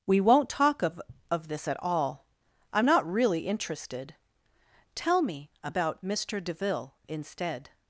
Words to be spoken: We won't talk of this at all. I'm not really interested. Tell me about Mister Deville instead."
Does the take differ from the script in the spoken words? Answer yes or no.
yes